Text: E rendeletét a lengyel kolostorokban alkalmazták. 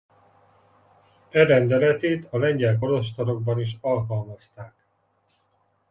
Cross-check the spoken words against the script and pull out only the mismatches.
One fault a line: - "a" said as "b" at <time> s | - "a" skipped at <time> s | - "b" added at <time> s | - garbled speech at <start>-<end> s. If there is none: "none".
- "is" added at 3.6 s